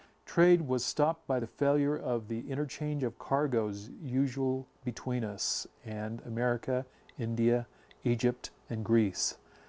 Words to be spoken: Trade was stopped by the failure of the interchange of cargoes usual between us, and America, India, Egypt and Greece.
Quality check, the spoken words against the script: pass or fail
pass